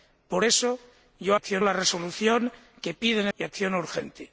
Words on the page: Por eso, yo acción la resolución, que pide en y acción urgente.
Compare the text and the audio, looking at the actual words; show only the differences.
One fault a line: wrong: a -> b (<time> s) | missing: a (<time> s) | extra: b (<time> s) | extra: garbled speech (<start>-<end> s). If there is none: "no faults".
no faults